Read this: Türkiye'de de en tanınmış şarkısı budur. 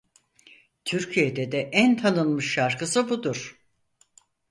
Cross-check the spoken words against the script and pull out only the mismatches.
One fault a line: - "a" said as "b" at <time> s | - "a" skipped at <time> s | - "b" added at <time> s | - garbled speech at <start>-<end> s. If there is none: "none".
none